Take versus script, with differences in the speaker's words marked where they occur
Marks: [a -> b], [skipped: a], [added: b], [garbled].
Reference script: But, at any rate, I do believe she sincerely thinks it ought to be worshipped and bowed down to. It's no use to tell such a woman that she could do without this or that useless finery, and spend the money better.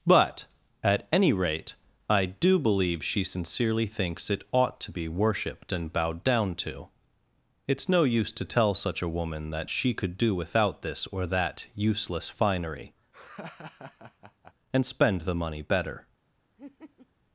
But, at any rate, I do believe she sincerely thinks it ought to be worshipped and bowed down to. It's no use to tell such a woman that she could do without this or that useless finery, and spend the money better.